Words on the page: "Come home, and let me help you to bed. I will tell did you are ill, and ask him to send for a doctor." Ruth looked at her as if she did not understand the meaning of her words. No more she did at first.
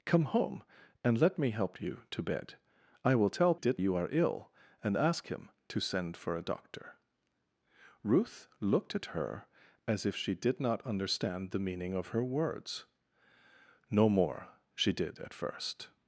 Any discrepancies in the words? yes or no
no